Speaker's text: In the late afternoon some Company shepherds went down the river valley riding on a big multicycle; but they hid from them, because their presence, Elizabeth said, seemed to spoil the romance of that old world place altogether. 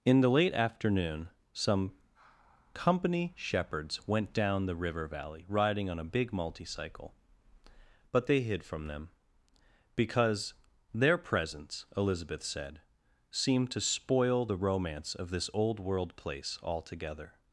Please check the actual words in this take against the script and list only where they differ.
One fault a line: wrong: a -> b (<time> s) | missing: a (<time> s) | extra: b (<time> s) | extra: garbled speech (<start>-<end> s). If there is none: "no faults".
wrong: that -> this (15.3 s)